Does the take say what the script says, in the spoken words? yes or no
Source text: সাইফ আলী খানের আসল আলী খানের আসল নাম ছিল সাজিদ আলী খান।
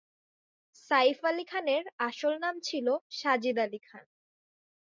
no